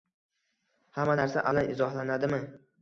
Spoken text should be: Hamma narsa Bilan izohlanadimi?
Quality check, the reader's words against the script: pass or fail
pass